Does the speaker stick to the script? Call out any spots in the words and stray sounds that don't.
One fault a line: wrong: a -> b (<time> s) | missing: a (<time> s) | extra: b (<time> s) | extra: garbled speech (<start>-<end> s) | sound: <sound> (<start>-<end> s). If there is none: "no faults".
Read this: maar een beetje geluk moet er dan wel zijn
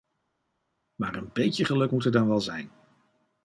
no faults